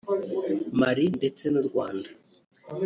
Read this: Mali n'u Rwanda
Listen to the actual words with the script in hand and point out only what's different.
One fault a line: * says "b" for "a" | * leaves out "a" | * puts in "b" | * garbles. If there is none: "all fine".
* puts in "ndetse"